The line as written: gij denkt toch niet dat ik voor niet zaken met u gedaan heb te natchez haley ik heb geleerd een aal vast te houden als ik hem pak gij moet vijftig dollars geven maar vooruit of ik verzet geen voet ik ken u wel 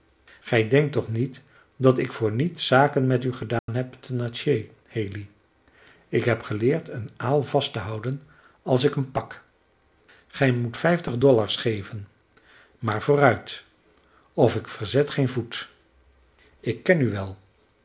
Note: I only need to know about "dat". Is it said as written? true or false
true